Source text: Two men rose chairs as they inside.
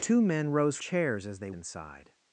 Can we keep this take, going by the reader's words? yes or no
yes